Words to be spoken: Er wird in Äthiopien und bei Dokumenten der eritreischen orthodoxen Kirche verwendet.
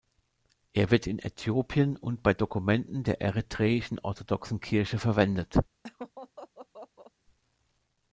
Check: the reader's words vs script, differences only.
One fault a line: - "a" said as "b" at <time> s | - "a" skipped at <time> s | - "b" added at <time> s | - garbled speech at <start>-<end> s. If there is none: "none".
none